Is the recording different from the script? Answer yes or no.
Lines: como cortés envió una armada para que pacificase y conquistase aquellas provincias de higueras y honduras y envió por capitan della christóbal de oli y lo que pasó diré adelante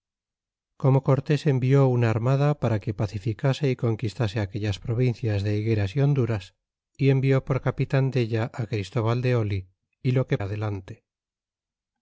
yes